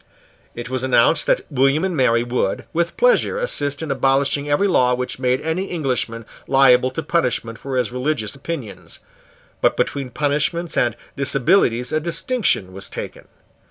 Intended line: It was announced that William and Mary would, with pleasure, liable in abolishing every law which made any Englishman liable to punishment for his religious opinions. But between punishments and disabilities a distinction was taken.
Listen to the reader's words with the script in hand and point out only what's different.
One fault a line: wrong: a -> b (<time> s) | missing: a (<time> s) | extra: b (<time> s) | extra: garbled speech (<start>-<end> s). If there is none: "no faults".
wrong: liable -> assist (3.4 s)